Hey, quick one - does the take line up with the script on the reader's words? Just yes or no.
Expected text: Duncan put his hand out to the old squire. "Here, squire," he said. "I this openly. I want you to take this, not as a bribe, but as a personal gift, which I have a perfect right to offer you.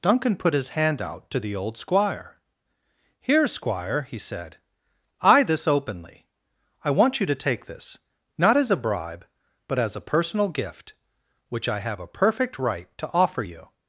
yes